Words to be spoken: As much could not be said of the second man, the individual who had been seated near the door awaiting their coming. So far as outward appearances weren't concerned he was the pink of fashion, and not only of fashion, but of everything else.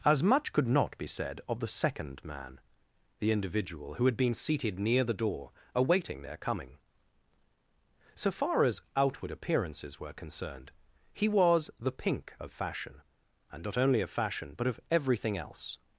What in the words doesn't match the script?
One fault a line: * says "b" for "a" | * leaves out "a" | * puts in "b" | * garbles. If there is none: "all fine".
* says "were" for "weren't"